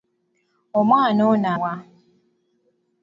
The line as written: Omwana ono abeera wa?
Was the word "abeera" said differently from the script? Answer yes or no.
yes